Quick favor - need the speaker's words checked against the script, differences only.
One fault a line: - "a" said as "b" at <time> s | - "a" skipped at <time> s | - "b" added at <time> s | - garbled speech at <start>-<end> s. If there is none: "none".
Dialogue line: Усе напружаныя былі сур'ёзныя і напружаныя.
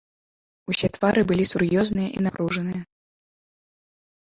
- "напружаныя" said as "твары" at 0.9 s